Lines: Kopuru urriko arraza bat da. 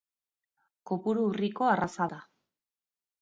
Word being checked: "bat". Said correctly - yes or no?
no